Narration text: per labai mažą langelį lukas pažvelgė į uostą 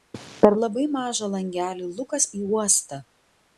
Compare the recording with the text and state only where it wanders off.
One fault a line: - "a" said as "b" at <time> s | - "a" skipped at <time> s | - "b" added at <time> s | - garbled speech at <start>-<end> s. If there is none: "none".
- "pažvelgė" skipped at 2.3 s